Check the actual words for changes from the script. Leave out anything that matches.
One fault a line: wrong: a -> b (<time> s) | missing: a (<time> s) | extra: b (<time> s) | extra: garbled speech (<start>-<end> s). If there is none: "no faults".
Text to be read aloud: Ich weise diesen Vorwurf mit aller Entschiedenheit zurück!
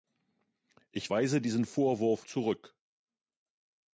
missing: mit aller Entschiedenheit (2.2 s)